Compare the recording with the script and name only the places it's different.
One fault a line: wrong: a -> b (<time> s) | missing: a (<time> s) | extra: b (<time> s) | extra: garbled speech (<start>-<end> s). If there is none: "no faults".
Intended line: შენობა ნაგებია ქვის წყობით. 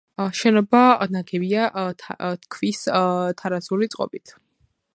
extra: თარაზული (3.4 s)